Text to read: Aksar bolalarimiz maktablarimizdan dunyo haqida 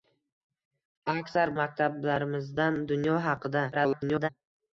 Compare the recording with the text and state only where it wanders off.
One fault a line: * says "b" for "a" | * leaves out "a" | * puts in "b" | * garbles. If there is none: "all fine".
* leaves out "bolalarimiz"
* garbles